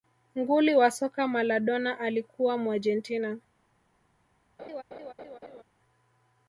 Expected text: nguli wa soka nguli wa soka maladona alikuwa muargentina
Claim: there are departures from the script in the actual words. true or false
true